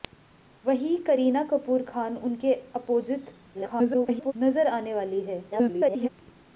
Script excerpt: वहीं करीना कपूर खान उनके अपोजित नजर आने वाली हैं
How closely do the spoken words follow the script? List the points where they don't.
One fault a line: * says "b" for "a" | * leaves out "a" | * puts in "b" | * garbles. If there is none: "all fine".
* garbles
* garbles